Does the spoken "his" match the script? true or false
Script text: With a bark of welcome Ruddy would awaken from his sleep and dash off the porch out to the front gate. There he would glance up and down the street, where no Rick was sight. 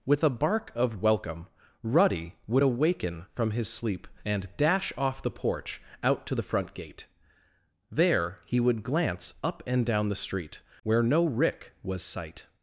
true